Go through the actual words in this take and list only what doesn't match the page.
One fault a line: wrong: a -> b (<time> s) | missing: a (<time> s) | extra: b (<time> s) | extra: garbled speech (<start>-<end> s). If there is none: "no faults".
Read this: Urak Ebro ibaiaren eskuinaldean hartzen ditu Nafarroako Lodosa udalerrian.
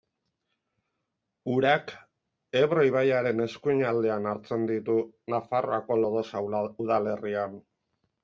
no faults